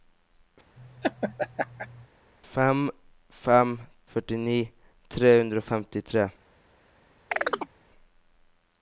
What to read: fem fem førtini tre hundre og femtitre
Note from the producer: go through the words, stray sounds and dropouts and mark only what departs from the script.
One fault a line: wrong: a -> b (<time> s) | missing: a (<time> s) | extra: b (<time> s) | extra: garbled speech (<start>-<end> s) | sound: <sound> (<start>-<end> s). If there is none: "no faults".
sound: laugh (0.8-2.1 s)
sound: chirp (7.3-7.7 s)